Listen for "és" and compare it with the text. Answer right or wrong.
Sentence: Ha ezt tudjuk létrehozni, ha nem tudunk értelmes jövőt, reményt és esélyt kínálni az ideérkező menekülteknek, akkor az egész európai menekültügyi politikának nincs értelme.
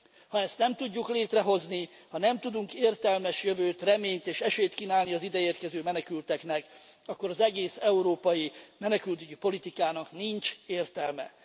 right